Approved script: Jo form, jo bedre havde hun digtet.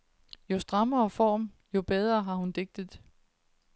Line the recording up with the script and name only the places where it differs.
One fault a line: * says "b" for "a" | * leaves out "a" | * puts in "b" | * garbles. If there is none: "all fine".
* puts in "strammere"
* says "har" for "havde"